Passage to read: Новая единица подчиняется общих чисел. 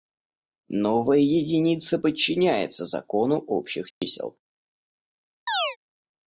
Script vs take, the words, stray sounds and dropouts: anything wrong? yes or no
yes